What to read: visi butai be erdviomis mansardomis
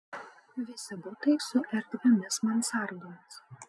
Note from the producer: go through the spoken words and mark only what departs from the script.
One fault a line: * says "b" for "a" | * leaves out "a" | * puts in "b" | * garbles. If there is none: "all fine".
* says "su" for "be"